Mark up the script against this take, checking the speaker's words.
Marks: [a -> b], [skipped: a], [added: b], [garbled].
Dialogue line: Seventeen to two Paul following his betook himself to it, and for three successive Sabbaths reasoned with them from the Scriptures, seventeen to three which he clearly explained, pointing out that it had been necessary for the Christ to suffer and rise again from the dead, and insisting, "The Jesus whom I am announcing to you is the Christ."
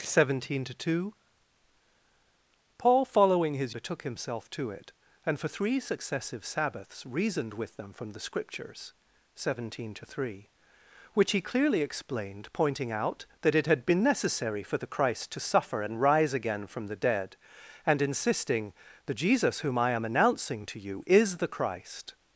Seventeen to two Paul following his betook himself to it, and for three successive Sabbaths reasoned with them from the Scriptures, seventeen to three which he clearly explained, pointing out that it had been necessary for the Christ to suffer and rise again from the dead, and insisting, "The Jesus whom I am announcing to you is the Christ."